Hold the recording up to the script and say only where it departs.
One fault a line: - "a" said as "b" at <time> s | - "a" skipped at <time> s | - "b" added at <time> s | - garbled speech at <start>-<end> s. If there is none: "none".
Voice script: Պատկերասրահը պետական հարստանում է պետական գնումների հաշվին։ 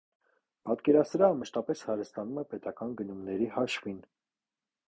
- "պետական" said as "մշտապես" at 1.4 s